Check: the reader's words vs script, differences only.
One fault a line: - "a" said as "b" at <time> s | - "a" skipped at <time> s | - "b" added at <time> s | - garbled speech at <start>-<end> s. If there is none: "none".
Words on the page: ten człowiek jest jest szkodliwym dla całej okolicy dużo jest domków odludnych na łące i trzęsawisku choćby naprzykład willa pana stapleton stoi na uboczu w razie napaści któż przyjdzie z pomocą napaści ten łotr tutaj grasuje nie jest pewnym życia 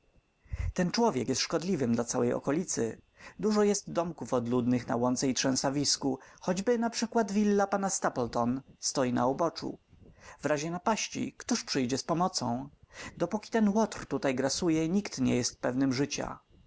- "jest" skipped at 1.4 s
- "napaści" said as "dopóki" at 13.2 s
- "nikt" added at 14.9 s